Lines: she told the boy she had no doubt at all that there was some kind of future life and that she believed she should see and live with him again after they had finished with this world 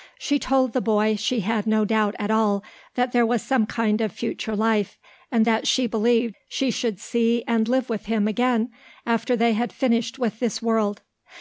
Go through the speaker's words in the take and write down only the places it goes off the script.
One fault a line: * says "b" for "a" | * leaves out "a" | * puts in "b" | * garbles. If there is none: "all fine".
all fine